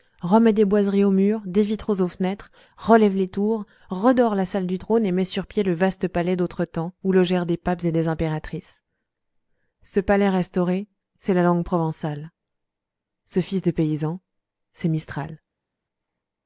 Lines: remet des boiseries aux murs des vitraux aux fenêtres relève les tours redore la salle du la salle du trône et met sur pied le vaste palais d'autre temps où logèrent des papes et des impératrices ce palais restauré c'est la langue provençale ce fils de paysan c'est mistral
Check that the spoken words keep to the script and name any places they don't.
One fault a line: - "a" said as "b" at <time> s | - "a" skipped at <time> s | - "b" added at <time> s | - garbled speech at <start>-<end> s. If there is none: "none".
- "la salle du" skipped at 4.8 s